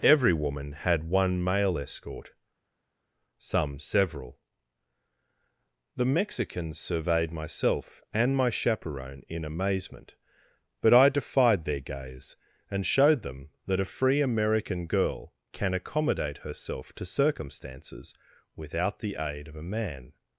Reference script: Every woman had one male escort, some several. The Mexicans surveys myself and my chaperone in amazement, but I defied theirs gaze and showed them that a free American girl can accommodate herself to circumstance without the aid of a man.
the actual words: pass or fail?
fail